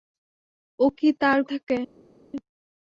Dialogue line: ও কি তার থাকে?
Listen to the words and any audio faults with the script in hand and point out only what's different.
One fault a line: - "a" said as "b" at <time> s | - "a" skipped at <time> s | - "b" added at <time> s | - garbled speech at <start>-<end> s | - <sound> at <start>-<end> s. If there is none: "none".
none